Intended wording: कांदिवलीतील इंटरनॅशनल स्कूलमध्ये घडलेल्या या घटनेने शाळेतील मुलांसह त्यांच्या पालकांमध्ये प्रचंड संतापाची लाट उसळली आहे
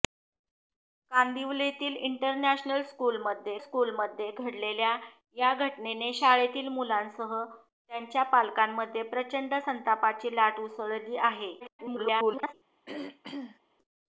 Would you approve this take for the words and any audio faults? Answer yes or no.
no